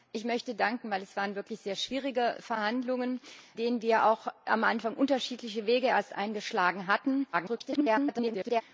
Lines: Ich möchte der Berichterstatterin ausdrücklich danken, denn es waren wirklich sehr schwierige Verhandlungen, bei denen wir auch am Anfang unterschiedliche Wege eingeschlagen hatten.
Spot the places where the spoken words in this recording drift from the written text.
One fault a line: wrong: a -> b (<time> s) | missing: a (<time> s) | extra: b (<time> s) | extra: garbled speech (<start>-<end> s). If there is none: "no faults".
missing: der Berichterstatterin ausdrücklich (0.6 s)
missing: bei (3.2 s)
extra: garbled speech (7.3-8.6 s)